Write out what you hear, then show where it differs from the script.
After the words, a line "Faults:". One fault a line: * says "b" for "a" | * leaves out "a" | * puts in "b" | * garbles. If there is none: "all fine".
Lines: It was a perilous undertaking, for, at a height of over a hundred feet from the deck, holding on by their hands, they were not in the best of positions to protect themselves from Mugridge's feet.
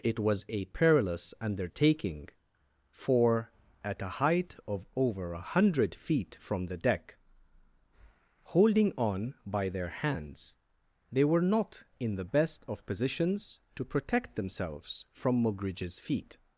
It was a perilous undertaking, for, at a height of over a hundred feet from the deck, holding on by their hands, they were not in the best of positions to protect themselves from Mugridge's feet.
Faults:
all fine